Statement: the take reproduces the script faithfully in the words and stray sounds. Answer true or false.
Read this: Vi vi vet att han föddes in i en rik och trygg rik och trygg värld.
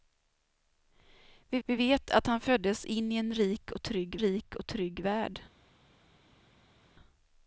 true